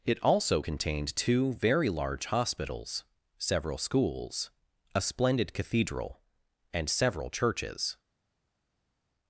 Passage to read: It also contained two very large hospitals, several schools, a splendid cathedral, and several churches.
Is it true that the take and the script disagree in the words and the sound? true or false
false